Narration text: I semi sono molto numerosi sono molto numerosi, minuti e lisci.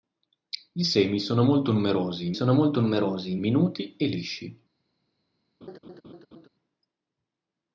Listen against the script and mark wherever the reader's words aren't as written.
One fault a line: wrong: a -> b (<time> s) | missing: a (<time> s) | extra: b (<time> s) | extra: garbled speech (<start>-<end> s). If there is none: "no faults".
no faults